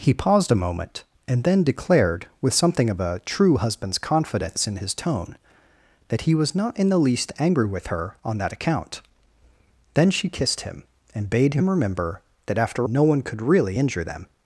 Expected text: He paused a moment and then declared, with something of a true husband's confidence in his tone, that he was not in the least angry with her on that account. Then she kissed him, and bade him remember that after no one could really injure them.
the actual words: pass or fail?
pass